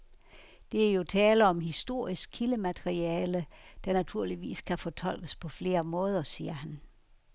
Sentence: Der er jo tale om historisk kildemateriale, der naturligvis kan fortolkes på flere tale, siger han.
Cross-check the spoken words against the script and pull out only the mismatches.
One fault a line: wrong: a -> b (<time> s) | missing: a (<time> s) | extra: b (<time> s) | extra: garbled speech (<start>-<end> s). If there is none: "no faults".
wrong: tale -> måder (5.8 s)